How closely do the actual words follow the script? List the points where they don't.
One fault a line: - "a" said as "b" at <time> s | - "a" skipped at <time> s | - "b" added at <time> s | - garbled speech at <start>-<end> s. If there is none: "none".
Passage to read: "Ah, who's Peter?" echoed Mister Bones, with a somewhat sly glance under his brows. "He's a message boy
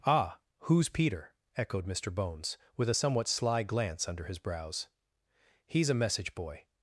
none